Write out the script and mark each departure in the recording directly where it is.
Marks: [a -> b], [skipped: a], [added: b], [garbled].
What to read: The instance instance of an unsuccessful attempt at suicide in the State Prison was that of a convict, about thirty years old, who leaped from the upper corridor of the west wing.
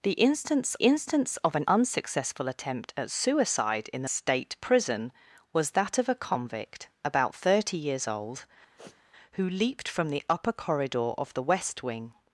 The instance instance of an unsuccessful attempt at suicide in the State Prison was that of a convict, about thirty years old, who leaped from the upper corridor of the west wing.